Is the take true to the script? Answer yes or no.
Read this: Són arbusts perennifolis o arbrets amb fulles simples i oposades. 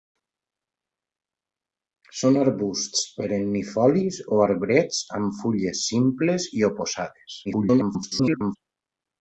no